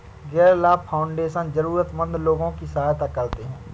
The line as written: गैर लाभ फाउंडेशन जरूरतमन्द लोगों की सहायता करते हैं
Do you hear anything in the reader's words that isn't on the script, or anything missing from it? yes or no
no